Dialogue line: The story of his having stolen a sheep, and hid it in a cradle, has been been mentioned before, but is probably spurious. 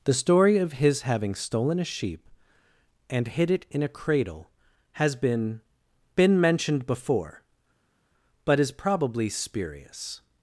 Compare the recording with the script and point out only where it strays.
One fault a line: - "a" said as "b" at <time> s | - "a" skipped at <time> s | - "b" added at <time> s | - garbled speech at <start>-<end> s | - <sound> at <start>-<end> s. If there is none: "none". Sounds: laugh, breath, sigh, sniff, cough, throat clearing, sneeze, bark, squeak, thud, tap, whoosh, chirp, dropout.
none